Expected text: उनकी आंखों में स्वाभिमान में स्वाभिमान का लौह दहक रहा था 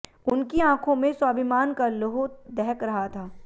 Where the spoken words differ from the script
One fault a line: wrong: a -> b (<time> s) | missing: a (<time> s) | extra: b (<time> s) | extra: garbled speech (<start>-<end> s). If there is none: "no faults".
missing: में स्वाभिमान (1.7 s)